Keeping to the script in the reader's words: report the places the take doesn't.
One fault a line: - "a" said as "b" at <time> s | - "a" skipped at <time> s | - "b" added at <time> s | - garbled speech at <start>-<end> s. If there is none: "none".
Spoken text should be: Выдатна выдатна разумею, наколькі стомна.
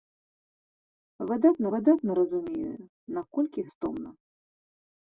none